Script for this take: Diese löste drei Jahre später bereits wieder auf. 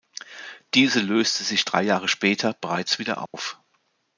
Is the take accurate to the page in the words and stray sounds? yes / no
no